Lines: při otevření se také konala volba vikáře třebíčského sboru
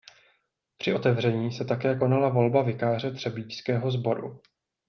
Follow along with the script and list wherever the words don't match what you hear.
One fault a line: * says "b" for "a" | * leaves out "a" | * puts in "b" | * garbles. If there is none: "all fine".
all fine